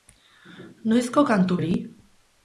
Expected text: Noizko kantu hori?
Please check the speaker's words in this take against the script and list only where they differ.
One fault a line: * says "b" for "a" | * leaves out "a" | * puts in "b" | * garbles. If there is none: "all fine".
all fine